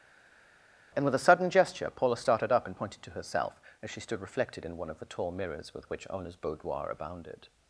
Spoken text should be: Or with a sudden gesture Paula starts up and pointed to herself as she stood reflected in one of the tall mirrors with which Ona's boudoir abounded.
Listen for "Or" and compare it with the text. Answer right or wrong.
wrong